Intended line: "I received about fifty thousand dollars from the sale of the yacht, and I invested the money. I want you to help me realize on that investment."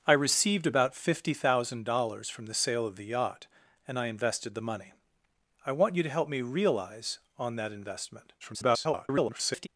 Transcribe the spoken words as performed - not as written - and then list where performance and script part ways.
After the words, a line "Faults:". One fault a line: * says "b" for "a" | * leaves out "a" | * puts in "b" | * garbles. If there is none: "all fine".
"I received about fifty thousand dollars from the sale of the yacht, and I invested the money. I want you to help me realize on that investment." [garbled]
Faults:
* garbles